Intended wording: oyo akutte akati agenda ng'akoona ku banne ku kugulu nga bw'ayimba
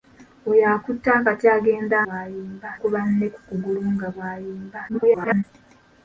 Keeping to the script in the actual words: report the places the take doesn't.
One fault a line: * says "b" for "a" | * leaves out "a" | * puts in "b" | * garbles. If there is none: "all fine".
* says "bw'ayimba" for "ng'akoona"
* garbles